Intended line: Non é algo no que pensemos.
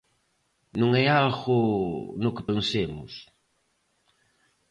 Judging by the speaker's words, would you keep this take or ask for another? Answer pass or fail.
pass